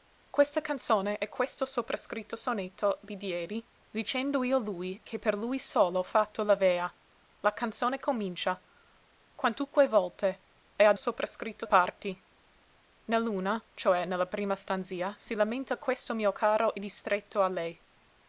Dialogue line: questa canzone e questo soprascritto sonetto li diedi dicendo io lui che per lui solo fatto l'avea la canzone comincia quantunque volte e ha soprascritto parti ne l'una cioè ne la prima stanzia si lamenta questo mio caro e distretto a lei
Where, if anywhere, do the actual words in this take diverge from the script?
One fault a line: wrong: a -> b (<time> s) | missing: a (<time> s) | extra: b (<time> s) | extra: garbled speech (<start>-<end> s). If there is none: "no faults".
no faults